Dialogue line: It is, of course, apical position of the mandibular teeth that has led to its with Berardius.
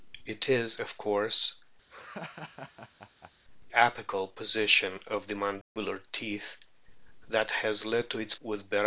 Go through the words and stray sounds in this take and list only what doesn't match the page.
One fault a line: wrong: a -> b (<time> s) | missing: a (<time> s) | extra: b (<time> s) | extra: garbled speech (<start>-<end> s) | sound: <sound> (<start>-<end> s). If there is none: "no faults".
sound: laugh (1.9-3.3 s)
sound: dropout (5.6-5.8 s)